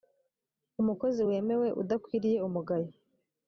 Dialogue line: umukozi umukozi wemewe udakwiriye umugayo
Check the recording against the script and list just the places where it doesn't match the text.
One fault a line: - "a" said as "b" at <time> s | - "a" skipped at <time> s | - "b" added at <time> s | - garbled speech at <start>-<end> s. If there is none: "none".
- "umukozi" skipped at 1.2 s